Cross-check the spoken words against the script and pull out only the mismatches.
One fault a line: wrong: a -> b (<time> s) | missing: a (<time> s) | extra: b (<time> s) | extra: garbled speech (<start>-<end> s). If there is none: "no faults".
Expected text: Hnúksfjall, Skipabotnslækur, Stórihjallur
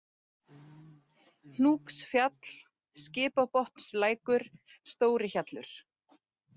no faults